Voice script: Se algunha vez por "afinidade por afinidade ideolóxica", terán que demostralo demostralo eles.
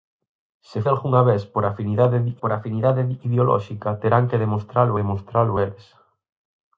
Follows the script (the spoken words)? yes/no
yes